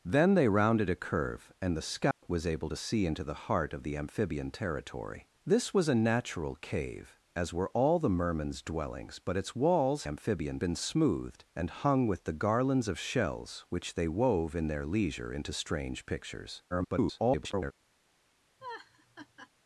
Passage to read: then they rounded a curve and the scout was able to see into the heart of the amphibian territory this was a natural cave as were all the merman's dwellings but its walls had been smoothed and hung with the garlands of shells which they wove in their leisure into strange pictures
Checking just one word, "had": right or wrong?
wrong